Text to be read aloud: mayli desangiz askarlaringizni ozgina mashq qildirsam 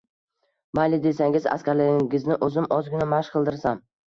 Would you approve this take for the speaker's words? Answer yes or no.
no